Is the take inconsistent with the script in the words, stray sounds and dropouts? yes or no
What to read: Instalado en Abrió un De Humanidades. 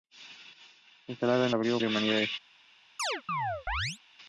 yes